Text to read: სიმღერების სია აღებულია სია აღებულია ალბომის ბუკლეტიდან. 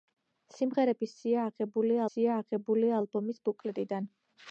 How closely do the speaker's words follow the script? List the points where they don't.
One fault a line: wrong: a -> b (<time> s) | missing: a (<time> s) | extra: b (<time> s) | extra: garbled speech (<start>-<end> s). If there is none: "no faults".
no faults